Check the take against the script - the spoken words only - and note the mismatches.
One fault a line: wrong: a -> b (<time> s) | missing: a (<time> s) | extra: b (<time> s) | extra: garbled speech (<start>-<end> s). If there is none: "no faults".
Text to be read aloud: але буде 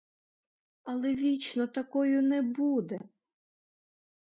extra: вічно такою не (1.1 s)